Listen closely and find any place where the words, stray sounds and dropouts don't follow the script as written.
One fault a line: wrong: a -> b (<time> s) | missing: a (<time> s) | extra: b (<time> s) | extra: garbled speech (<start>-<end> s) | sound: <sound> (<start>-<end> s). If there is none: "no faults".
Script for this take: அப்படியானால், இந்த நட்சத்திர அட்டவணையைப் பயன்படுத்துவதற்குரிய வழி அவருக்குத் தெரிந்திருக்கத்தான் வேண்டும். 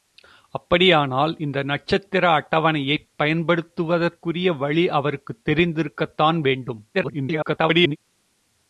extra: garbled speech (6.9-8.0 s)